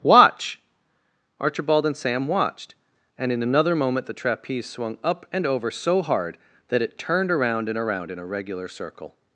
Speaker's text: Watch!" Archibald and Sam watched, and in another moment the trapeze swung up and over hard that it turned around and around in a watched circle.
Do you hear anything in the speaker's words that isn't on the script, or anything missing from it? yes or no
yes